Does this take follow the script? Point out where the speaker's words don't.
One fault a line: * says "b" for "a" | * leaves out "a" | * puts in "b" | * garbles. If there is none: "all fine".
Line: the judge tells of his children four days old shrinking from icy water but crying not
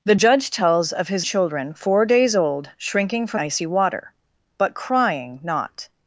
all fine